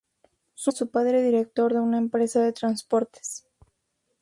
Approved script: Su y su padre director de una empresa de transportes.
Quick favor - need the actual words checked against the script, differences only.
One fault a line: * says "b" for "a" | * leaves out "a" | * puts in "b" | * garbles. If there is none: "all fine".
all fine